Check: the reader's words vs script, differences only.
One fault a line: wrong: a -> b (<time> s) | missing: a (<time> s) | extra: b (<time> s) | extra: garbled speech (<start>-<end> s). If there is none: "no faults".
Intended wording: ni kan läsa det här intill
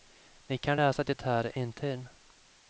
no faults